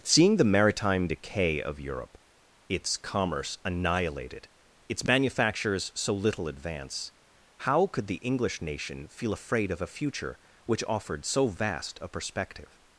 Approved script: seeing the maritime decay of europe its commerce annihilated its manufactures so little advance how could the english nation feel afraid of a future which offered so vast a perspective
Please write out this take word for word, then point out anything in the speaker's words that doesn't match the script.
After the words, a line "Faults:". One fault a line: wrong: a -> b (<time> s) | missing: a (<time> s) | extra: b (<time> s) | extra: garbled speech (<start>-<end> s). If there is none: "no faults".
seeing the maritime decay of europe its commerce annihilated its manufactures so little advance how could the english nation feel afraid of a future which offered so vast a perspective
Faults:
no faults